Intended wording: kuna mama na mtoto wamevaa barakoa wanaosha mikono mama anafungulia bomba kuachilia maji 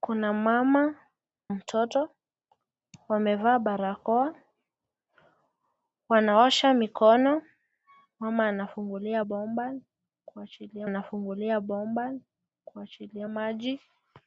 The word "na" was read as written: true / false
false